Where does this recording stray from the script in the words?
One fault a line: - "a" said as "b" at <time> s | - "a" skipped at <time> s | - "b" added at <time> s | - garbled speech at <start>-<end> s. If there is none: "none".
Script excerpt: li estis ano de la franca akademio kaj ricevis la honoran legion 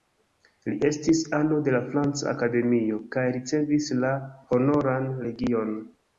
none